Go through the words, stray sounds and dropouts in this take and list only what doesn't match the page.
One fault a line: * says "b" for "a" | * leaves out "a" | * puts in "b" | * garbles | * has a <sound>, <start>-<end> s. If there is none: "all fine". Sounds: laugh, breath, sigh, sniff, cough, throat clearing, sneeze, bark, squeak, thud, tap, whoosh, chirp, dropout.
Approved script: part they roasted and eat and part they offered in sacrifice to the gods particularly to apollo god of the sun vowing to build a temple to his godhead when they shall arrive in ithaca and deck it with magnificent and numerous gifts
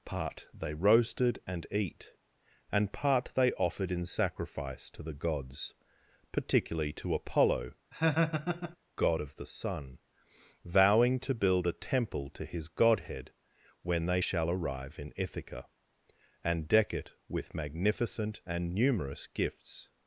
* has a laugh, 7.9-8.8 s